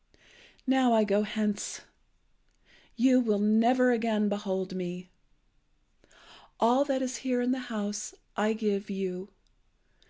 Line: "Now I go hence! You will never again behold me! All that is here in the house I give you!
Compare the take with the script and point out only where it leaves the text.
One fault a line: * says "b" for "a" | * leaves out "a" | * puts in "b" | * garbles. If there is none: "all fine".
all fine